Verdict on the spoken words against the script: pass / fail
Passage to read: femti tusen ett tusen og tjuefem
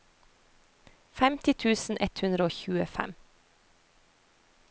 fail